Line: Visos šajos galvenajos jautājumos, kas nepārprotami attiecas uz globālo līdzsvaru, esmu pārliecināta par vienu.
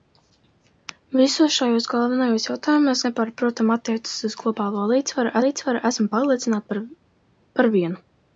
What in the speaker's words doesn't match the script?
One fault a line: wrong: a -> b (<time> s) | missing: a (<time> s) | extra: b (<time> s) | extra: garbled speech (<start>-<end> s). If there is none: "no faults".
missing: kas (3.0 s)
extra: līdzsvaru (5.5 s)